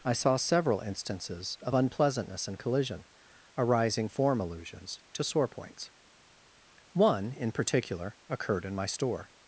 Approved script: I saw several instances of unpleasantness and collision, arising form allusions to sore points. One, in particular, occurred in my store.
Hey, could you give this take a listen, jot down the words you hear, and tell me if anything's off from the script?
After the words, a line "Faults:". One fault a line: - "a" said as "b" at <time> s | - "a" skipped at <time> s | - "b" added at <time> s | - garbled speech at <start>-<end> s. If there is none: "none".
I saw several instances of unpleasantness and collision, arising form allusions to sore points. One, in particular, occurred in my store.
Faults:
none